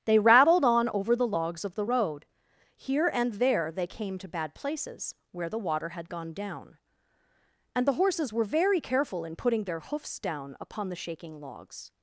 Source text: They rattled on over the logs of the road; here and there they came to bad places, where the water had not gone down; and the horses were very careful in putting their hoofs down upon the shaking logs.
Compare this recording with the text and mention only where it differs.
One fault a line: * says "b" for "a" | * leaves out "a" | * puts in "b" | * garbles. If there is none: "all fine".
* leaves out "not"